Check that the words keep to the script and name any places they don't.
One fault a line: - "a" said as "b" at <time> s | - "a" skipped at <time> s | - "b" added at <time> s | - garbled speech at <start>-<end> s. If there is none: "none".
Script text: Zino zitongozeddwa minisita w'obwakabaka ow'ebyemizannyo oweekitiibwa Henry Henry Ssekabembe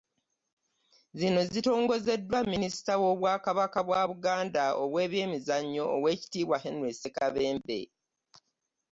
- "bwa Buganda" added at 3.9 s
- "Henry" skipped at 6.9 s